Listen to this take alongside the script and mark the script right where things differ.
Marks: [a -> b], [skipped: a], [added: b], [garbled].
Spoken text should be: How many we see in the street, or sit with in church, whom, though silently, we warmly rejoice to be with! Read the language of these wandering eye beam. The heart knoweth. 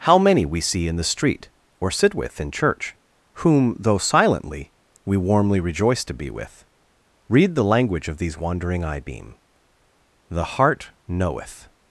How many we see in the street, or sit with in church, whom, though silently, we warmly rejoice to be with! Read the language of these wandering eye beam. The heart knoweth.